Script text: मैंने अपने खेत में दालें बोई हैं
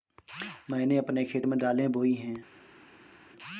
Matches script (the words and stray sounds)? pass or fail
pass